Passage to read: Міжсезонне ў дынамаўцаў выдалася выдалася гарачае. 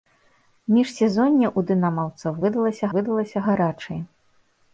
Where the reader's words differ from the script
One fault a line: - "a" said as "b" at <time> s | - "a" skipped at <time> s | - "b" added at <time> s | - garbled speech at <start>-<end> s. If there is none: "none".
none